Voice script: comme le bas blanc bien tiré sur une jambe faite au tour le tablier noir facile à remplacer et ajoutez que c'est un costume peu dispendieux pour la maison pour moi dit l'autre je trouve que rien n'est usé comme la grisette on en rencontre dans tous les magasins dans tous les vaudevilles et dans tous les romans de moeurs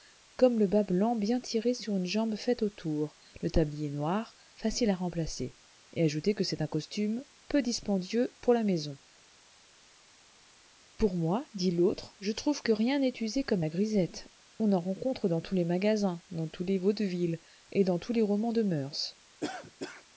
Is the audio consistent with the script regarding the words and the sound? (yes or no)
no